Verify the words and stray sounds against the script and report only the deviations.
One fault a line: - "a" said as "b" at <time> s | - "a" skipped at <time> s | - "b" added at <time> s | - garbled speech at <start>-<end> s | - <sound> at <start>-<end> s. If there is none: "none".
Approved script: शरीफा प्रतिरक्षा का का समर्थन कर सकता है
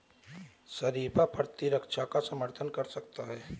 - "का" skipped at 2.2 s